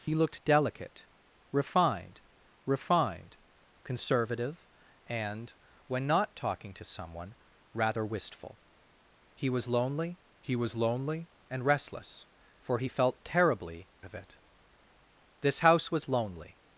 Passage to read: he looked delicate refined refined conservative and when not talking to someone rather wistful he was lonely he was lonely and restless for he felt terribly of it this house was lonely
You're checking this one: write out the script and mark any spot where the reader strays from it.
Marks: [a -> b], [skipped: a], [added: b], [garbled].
he looked delicate refined refined conservative and when not talking to someone rather wistful he was lonely he was lonely and restless for he felt terribly of it this house was lonely